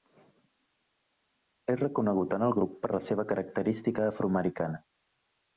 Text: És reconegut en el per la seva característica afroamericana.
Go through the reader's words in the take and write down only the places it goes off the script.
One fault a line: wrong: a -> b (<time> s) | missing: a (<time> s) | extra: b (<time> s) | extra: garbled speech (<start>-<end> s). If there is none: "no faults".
extra: grup (2.6 s)